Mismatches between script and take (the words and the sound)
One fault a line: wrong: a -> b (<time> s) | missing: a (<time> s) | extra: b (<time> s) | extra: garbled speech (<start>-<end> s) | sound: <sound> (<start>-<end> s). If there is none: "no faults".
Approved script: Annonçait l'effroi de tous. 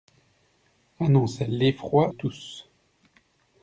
missing: de (2.1 s)